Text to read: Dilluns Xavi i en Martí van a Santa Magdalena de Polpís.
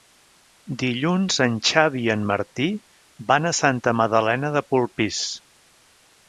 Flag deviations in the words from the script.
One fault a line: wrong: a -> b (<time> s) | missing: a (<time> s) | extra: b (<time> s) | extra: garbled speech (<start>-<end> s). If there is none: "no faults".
extra: en (1.4 s)